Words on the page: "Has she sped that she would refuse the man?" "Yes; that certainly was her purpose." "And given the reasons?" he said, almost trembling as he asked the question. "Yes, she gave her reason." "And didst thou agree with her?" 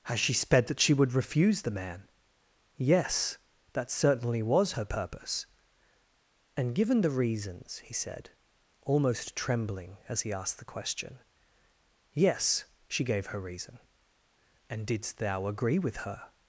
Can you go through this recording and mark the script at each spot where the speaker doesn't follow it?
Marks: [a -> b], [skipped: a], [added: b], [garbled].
"Has she sped that she would refuse the man?" "Yes; that certainly was her purpose." "And given the reasons?" he said, almost trembling as he asked the question. "Yes, she gave her reason." "And didst thou agree with her?"